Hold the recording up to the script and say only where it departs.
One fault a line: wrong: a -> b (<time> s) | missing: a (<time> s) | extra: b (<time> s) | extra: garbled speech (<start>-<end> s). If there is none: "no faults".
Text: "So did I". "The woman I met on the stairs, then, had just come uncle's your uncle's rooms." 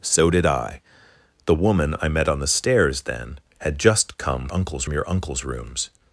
no faults